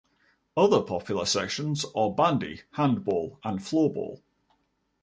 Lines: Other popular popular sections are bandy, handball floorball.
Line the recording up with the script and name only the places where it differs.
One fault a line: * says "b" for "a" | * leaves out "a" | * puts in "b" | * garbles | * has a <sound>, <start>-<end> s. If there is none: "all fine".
* leaves out "popular"
* puts in "and"